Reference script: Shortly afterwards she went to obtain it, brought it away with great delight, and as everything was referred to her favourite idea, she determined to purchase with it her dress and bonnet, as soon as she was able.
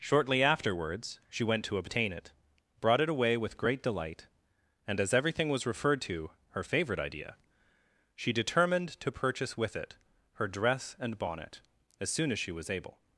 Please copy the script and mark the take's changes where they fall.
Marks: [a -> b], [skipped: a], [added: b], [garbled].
Shortly afterwards she went to obtain it, brought it away with great delight, and as everything was referred to her favourite idea, she determined to purchase with it her dress and bonnet, as soon as she was able.